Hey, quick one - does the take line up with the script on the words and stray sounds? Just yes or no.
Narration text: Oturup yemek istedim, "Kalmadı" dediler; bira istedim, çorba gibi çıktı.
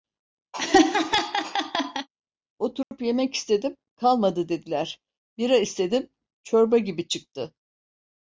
no